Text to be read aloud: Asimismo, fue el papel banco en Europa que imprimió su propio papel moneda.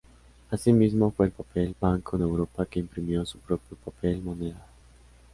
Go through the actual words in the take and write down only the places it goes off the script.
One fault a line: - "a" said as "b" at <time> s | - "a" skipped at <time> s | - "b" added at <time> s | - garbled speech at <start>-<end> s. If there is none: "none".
none